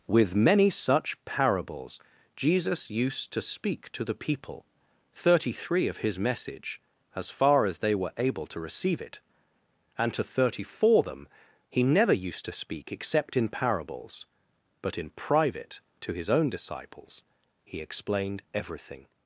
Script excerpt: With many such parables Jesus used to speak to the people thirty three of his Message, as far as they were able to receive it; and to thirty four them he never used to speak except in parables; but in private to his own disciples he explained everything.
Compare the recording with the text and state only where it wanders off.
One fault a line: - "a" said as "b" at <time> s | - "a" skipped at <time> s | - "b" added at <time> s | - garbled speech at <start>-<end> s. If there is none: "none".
none